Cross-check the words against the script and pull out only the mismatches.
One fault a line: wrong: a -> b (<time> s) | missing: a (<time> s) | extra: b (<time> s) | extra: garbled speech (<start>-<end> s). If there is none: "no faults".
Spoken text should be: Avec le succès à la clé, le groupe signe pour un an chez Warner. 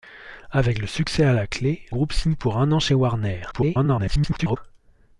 missing: le (1.9 s)
extra: garbled speech (3.5-4.6 s)